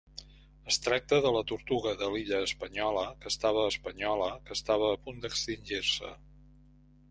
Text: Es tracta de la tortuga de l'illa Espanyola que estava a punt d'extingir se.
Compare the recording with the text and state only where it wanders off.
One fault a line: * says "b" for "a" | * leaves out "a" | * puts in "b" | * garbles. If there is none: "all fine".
* puts in "Espanyola que estava"